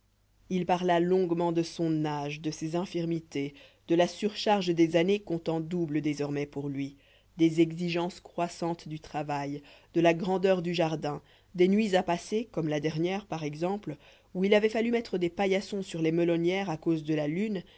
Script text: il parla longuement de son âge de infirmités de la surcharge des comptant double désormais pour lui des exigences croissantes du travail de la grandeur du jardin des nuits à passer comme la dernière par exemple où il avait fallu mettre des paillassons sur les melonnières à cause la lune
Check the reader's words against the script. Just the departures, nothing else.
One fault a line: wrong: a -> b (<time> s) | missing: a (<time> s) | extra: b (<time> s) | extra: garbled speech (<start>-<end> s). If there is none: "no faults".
extra: ses (2.5 s)
extra: années (5.0 s)
extra: de (17.0 s)